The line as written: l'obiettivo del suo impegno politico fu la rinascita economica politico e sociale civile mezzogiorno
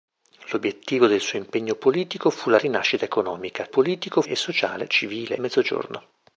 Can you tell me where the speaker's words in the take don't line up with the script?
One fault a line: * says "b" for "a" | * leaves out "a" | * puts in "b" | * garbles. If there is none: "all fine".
all fine